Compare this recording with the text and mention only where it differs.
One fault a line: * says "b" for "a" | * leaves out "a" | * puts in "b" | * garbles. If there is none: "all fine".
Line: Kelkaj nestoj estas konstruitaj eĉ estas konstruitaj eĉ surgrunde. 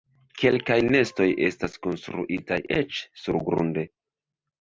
* leaves out "estas konstruitaj eĉ"